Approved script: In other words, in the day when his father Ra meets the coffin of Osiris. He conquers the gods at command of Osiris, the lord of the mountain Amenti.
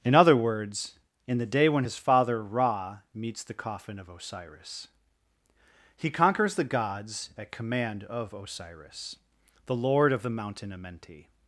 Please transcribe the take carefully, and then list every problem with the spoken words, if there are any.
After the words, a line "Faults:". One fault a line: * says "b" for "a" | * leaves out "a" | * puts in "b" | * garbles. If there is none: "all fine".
In other words, in the day when his father Ra meets the coffin of Osiris. He conquers the gods at command of Osiris, the lord of the mountain Amenti.
Faults:
all fine